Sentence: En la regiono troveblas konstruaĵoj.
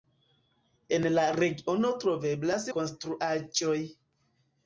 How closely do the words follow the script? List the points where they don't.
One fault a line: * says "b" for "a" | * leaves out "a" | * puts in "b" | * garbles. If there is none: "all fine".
all fine